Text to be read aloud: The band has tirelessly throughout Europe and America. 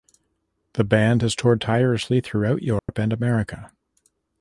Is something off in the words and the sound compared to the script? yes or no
yes